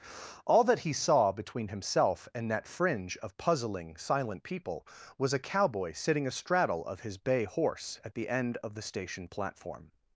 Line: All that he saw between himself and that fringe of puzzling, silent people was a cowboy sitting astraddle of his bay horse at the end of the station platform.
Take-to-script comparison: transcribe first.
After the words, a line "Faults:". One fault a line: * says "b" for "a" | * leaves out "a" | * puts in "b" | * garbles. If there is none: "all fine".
All that he saw between himself and that fringe of puzzling, silent people was a cowboy sitting astraddle of his bay horse at the end of the station platform.
Faults:
all fine